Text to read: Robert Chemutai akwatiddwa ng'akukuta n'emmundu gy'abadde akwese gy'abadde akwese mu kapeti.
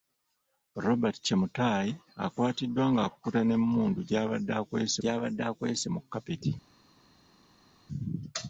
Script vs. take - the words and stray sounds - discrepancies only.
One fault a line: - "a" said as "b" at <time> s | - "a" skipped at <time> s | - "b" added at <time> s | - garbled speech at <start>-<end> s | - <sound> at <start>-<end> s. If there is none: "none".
none